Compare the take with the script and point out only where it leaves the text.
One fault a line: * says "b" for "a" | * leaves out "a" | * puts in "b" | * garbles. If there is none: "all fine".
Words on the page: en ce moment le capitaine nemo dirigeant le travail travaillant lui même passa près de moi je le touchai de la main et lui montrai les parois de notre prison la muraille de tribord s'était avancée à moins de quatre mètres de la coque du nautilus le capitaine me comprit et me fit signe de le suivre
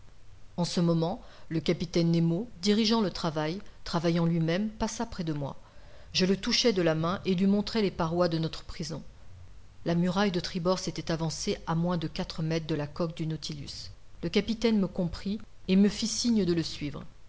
all fine